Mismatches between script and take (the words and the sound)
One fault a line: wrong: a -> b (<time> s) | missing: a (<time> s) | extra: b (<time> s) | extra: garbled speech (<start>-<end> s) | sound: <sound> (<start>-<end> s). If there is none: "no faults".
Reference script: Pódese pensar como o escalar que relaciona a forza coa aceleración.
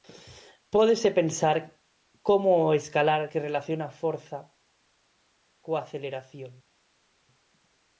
no faults